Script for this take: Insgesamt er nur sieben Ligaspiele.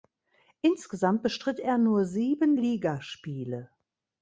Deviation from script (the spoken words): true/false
true